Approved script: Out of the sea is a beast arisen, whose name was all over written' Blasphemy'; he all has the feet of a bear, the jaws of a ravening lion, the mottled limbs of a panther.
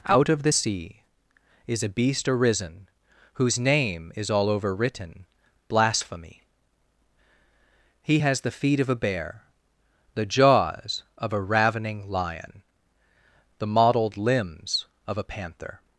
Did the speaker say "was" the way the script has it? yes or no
no